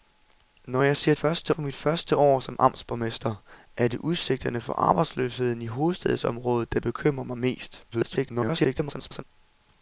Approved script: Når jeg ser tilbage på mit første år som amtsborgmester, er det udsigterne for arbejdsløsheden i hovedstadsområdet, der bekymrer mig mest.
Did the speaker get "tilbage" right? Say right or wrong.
wrong